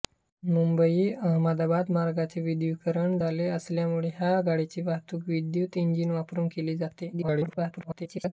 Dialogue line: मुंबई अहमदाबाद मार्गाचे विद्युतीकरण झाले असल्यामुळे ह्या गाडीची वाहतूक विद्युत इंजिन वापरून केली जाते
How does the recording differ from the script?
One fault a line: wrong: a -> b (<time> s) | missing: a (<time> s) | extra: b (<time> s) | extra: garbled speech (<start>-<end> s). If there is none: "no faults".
extra: garbled speech (7.1-8.3 s)